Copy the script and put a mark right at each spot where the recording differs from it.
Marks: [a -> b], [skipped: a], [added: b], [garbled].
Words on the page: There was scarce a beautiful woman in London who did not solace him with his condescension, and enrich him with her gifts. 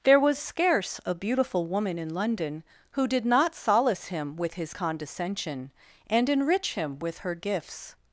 There was scarce a beautiful woman in London who did not solace him with his condescension, and enrich him with her gifts.